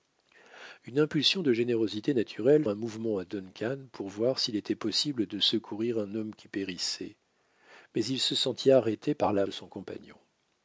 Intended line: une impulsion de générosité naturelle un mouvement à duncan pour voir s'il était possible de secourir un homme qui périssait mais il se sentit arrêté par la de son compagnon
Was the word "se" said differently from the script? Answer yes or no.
no